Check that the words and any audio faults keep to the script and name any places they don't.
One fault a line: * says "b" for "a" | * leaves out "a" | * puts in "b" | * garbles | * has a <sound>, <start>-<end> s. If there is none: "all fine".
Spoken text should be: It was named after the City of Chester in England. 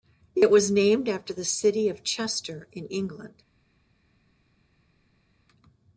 all fine